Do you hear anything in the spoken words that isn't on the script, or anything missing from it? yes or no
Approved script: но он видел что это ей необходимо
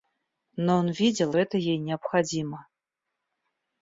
yes